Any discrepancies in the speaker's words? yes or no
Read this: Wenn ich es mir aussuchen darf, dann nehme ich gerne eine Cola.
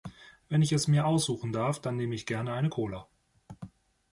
no